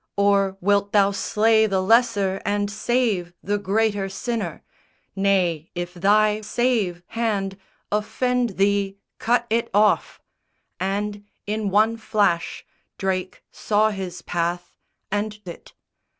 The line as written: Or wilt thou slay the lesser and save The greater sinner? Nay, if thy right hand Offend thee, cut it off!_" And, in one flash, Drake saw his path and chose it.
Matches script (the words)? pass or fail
fail